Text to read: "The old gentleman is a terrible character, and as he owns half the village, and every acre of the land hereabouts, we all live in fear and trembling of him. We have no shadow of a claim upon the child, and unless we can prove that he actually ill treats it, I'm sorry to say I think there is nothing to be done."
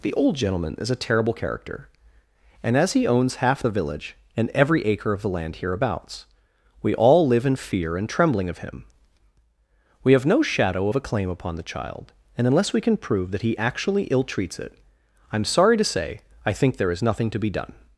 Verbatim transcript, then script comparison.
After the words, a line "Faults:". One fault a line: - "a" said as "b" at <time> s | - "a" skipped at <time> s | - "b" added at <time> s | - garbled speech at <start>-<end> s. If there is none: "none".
"The old gentleman is a terrible character, and as he owns half the village, and every acre of the land hereabouts, we all live in fear and trembling of him. We have no shadow of a claim upon the child, and unless we can prove that he actually ill treats it, I'm sorry to say I think there is nothing to be done."
Faults:
none